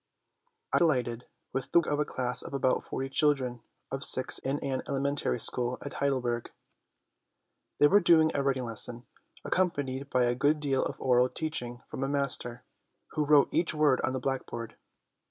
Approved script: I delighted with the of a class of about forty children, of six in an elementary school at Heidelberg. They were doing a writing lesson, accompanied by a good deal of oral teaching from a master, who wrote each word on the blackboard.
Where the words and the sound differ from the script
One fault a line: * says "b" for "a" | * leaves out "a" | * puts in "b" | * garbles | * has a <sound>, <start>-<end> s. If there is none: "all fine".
all fine